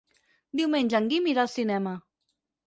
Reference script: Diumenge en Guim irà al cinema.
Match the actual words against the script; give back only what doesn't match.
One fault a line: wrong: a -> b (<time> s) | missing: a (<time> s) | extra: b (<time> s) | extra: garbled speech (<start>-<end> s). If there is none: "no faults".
no faults